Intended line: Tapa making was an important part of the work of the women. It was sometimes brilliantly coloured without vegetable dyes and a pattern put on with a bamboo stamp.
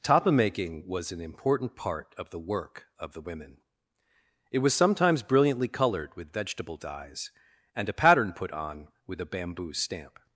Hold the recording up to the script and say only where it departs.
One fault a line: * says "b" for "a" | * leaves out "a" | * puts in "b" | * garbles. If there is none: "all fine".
* says "with" for "without"